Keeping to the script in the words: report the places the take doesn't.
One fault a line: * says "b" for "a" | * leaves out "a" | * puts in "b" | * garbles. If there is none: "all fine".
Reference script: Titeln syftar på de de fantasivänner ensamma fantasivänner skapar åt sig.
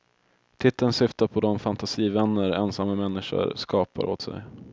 * leaves out "de"
* says "människor" for "fantasivänner"